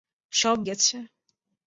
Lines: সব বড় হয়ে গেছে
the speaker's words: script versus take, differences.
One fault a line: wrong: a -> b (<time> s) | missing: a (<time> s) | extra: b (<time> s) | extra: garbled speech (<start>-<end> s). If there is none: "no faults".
missing: বড় হয়ে (0.6 s)